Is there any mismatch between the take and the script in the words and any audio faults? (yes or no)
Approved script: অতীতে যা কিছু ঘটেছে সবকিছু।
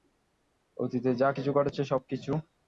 no